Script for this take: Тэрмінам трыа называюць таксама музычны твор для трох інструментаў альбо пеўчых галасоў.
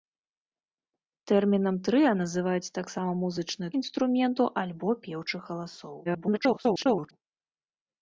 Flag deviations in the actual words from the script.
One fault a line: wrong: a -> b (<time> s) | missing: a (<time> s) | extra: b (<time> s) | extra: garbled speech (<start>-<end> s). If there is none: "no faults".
missing: твор для трох (3.7 s)
extra: garbled speech (6.0-7.1 s)